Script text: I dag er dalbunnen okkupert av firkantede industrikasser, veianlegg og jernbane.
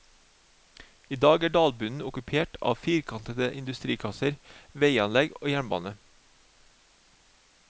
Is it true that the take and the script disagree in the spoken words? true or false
false